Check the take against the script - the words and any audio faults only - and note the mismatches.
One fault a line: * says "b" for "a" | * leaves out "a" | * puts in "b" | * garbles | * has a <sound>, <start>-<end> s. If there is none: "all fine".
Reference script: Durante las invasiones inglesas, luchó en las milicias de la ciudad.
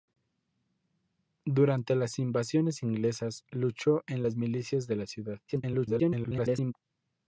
* garbles